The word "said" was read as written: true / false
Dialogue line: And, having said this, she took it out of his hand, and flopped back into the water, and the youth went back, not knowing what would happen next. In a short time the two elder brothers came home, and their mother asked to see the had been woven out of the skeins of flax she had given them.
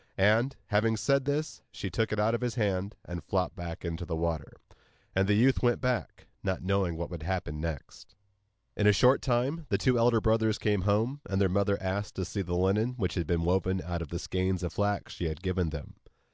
true